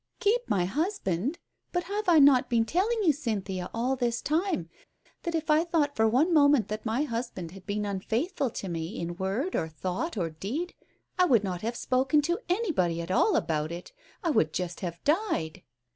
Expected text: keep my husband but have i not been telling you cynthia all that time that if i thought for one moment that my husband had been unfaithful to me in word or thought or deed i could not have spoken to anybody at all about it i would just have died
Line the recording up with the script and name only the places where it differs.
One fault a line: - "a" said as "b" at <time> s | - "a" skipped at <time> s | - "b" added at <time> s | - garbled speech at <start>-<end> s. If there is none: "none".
- "that" said as "this" at 4.0 s
- "could" said as "would" at 11.2 s